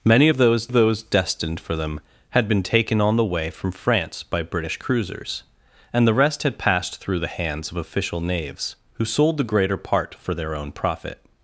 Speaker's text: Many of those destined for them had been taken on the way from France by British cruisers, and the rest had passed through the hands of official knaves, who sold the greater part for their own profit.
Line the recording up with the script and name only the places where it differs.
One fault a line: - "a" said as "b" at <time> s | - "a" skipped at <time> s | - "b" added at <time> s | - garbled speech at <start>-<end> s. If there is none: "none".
- "those" added at 0.7 s